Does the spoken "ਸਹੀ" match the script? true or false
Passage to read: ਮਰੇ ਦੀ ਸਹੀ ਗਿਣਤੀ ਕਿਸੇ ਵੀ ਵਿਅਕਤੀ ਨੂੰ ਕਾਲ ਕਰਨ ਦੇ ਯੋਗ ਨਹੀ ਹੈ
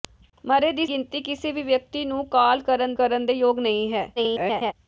false